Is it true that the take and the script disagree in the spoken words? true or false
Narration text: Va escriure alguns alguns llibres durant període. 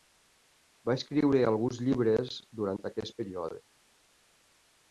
true